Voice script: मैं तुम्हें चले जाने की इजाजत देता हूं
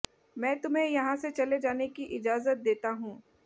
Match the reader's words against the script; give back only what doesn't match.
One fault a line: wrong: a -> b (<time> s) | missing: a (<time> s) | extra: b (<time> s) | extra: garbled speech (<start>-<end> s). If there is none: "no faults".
extra: यहां से (0.9 s)